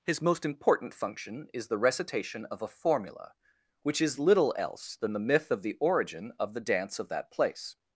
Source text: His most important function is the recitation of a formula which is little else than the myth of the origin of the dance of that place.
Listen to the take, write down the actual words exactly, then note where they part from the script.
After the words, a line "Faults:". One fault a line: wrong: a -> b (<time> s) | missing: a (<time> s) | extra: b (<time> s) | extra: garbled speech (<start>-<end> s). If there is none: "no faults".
His most important function is the recitation of a formula which is little else than the myth of the origin of the dance of that place.
Faults:
no faults